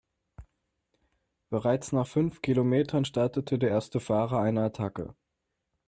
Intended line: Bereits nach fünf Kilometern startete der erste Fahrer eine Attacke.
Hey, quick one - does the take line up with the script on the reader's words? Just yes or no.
yes